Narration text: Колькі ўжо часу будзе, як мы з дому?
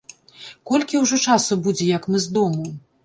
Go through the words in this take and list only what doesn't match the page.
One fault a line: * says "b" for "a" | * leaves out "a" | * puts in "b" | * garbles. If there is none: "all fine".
all fine